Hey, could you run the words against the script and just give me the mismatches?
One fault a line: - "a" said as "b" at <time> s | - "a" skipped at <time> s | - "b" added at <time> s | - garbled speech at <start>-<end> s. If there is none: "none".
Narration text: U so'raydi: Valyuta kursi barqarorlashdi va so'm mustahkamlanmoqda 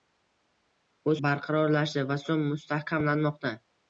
- "so'raydi Valyuta kursi" skipped at 1.1 s